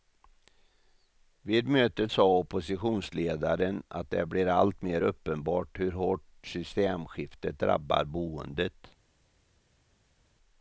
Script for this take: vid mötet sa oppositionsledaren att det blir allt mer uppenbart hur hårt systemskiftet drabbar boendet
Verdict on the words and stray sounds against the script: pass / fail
pass